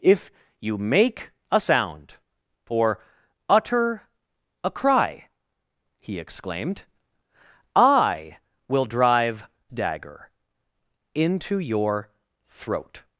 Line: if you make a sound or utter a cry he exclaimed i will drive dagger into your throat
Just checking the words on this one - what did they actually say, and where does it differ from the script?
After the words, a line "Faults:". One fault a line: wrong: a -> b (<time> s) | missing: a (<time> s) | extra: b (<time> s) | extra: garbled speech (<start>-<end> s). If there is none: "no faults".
if you make a sound or utter a cry he exclaimed i will drive dagger into your throat
Faults:
no faults